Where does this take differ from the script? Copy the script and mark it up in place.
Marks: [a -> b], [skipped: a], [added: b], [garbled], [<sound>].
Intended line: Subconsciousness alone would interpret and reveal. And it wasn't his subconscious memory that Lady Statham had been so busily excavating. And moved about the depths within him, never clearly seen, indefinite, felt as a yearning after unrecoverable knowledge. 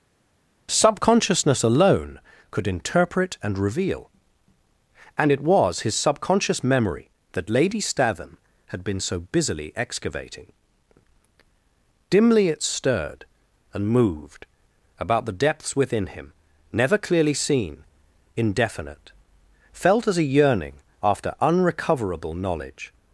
Subconsciousness alone [would -> could] interpret and reveal. And it [wasn't -> was] his subconscious memory that Lady Statham had been so busily excavating. [added: Dimly it stirred] And moved about the depths within him, never clearly seen, indefinite, felt as a yearning after unrecoverable knowledge.